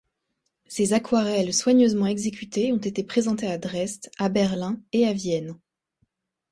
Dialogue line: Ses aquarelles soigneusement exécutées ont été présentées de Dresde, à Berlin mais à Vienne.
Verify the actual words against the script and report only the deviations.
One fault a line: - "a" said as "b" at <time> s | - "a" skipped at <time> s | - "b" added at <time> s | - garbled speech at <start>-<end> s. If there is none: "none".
- "de" said as "à" at 3.5 s
- "mais" said as "et" at 4.9 s